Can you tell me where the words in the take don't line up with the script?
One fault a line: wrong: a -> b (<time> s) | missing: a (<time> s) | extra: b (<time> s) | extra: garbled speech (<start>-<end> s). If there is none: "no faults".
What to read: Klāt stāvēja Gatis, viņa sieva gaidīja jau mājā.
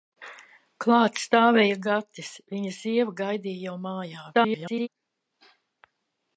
extra: garbled speech (4.3-4.9 s)